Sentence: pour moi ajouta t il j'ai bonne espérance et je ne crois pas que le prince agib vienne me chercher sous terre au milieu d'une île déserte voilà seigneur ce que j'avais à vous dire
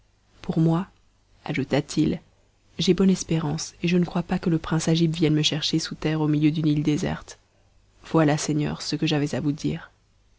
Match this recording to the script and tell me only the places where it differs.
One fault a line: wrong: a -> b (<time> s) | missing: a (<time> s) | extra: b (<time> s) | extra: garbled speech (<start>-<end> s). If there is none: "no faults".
no faults